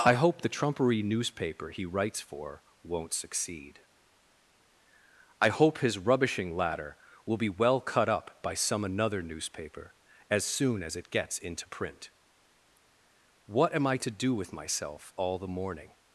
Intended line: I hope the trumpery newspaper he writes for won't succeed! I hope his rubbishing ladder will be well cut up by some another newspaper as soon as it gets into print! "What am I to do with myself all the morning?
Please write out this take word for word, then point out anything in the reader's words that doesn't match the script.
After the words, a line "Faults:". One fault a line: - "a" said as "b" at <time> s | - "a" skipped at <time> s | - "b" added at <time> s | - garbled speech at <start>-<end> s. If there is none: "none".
I hope the trumpery newspaper he writes for won't succeed! I hope his rubbishing ladder will be well cut up by some another newspaper as soon as it gets into print! "What am I to do with myself all the morning?
Faults:
none